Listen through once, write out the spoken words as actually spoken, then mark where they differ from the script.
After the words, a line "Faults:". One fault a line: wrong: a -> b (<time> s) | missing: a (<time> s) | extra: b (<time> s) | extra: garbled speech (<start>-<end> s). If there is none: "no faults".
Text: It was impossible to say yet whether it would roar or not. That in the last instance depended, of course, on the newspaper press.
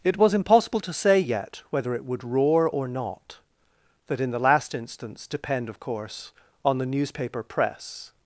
It was impossible to say yet whether it would roar or not. That in the last instance depend, of course, on the newspaper press.
Faults:
wrong: depended -> depend (5.3 s)